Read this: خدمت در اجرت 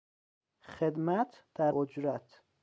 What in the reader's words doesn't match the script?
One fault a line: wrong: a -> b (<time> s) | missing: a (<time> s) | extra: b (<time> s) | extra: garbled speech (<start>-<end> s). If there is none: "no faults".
no faults